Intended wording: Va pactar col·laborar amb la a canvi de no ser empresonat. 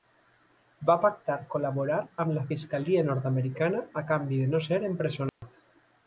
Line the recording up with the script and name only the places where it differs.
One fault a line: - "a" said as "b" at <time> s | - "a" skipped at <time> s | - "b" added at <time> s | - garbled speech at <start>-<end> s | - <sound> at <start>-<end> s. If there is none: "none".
- "fiscalia nord americana" added at 2.5 s
- dropout at 5.3-5.4 s